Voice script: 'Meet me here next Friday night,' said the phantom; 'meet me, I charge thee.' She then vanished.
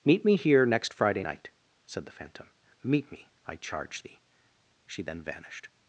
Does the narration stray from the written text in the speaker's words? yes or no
no